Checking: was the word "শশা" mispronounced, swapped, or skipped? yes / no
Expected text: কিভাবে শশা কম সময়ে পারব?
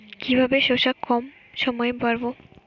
no